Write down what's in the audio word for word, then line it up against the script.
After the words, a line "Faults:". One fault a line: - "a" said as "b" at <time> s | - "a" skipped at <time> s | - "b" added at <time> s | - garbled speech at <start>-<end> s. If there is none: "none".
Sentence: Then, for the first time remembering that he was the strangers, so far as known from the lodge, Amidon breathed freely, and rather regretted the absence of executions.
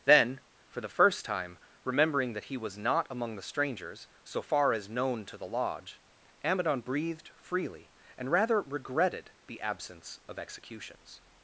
Then, for the first time remembering that he was not among the strangers, so far as known to the lodge, Amidon breathed freely, and rather regretted the absence of executions.
Faults:
- "not among" added at 2.8 s
- "from" said as "to" at 5.3 s